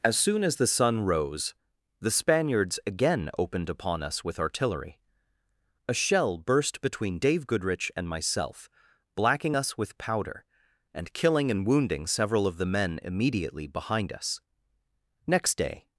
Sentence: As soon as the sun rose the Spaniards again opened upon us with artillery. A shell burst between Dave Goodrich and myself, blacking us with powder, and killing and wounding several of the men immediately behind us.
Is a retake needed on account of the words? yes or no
yes